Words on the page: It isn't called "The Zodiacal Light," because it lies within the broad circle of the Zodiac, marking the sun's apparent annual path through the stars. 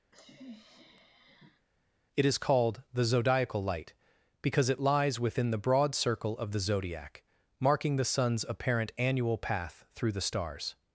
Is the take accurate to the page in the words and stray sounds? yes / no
no